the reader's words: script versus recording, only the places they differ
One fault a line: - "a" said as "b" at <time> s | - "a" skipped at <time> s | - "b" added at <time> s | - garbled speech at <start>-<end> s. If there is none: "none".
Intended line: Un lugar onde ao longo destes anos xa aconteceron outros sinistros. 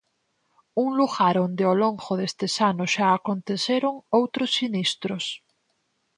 none